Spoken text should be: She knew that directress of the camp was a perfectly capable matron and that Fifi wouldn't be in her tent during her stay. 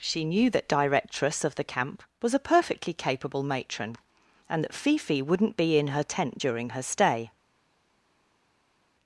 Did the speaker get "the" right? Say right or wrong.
right